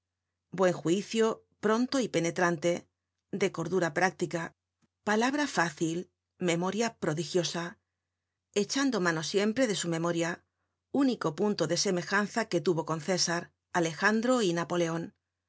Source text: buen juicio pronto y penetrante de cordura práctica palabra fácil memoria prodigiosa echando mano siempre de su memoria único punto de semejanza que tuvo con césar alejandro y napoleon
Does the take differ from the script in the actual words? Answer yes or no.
no